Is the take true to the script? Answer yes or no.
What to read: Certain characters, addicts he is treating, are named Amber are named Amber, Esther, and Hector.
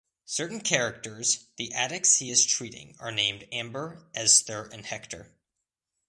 no